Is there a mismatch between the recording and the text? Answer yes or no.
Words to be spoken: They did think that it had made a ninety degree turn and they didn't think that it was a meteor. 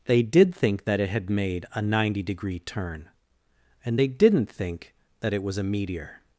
no